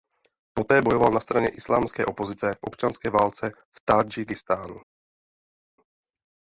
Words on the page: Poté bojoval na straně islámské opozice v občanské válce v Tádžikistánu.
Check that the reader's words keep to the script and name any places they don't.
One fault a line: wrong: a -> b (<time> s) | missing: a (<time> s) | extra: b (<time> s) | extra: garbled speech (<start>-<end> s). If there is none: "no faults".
no faults